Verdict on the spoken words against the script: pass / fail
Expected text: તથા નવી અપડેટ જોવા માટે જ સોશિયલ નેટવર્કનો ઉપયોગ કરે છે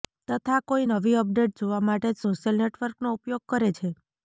fail